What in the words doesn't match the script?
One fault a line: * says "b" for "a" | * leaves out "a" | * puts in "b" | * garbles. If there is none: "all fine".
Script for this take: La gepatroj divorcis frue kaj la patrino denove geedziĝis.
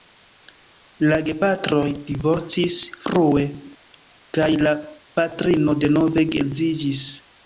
all fine